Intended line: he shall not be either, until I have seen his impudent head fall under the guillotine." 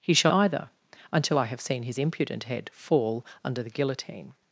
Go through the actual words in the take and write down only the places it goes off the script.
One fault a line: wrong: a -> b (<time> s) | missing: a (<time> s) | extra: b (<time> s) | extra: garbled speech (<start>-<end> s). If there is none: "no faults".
missing: not be (0.3 s)